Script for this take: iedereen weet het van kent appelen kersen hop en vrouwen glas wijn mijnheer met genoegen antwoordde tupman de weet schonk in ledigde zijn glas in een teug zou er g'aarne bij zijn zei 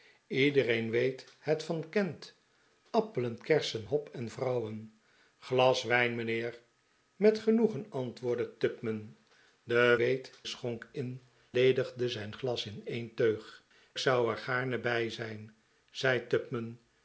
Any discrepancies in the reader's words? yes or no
no